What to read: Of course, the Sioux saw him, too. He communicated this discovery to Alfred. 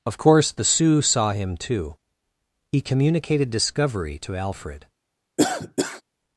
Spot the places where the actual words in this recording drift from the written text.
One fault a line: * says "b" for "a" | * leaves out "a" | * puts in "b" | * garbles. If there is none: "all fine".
* leaves out "this"